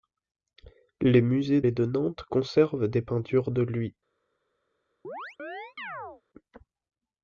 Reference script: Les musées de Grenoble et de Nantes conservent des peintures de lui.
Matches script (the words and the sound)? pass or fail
fail